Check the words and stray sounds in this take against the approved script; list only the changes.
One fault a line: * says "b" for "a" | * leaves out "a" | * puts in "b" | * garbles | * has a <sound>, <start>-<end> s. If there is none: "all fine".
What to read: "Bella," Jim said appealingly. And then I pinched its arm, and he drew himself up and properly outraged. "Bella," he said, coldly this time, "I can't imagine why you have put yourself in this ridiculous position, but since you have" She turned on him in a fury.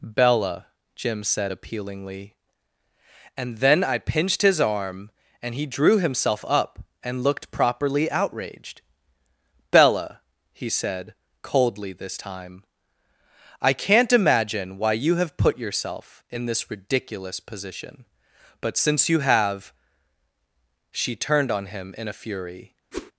* says "his" for "its"
* puts in "looked"
* has a whoosh, 22.9-23.1 s